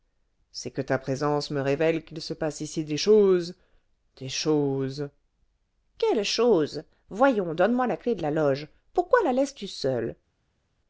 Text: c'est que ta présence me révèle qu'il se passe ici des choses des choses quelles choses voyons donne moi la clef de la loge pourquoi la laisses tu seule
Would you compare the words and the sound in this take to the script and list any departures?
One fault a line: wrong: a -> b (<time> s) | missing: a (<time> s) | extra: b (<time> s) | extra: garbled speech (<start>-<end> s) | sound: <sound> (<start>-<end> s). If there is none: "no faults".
no faults